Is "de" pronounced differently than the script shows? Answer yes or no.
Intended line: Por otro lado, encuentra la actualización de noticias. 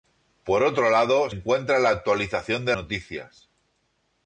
no